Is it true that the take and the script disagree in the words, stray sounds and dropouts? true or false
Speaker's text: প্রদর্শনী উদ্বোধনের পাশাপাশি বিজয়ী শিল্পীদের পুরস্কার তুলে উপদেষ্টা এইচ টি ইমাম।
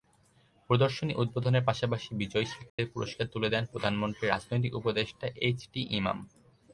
true